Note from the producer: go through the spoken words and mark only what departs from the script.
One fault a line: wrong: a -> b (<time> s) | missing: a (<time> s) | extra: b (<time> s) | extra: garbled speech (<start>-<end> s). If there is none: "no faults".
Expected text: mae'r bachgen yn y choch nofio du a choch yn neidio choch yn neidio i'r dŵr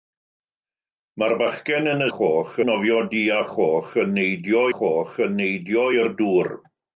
no faults